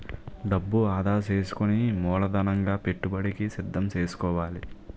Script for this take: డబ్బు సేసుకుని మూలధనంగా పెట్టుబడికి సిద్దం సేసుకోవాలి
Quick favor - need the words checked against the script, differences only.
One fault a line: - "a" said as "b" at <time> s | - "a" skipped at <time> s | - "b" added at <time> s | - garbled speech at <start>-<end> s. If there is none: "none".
- "ఆదా" added at 0.9 s